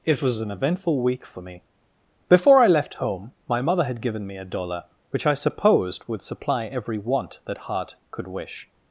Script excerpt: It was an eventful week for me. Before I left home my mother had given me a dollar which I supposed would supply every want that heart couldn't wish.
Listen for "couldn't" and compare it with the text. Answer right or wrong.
wrong